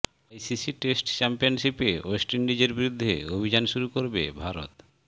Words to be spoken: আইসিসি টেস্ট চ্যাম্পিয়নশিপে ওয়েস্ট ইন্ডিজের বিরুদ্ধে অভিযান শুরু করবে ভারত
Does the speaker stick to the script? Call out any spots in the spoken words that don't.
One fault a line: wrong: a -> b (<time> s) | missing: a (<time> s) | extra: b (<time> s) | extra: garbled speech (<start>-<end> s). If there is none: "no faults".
no faults